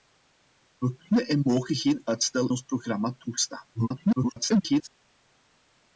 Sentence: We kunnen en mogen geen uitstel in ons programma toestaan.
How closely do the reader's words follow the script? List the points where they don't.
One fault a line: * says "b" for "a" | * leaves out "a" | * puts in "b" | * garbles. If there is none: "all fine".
* leaves out "in"
* garbles